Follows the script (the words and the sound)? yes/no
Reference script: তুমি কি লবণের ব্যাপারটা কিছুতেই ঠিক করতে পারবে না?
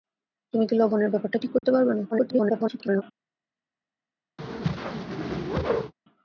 no